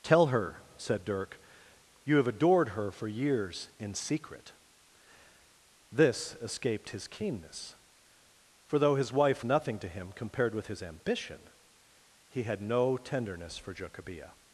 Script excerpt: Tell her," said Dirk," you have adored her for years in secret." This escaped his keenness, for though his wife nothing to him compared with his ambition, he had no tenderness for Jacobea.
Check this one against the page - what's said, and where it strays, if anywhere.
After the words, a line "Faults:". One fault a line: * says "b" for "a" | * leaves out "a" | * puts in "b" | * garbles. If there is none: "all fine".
Tell her," said Dirk," you have adored her for years in secret." This escaped his keenness, for though his wife nothing to him compared with his ambition, he had no tenderness for Jacobea.
Faults:
all fine